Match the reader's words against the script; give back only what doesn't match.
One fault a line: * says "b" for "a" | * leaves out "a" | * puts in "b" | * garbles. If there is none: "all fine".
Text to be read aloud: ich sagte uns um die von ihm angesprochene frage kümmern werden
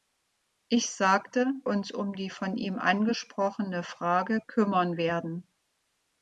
all fine